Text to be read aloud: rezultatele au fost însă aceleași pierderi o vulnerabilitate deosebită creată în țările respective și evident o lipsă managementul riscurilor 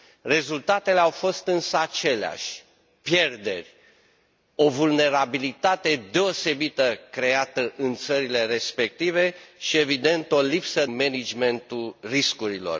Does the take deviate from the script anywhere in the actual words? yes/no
no